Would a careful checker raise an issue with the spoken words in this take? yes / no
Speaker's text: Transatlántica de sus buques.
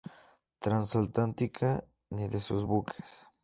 yes